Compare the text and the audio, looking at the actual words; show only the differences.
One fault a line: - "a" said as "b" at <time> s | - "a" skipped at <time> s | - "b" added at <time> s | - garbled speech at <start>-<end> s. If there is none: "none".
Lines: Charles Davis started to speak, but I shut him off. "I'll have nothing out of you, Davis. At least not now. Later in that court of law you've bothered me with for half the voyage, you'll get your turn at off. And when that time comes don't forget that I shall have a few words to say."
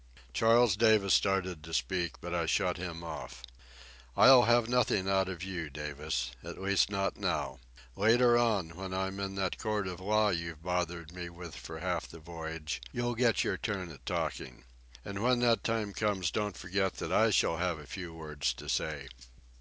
- "on when I'm" added at 8.3 s
- "off" said as "talking" at 14.1 s